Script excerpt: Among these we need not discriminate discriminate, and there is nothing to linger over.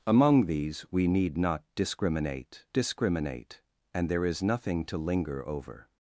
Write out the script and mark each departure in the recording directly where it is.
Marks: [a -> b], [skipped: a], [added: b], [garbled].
Among these we need not discriminate discriminate, and there is nothing to linger over.